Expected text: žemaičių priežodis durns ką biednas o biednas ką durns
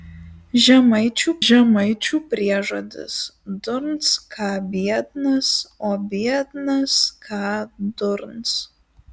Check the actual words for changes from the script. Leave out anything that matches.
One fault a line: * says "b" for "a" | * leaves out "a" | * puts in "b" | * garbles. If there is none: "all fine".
* puts in "žemaičių"